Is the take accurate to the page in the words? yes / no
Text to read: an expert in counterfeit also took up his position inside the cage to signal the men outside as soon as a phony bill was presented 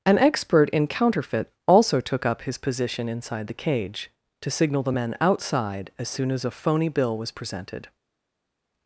yes